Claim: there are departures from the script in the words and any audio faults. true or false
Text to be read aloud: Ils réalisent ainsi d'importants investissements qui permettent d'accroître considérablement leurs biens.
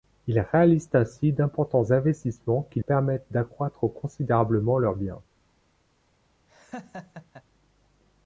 true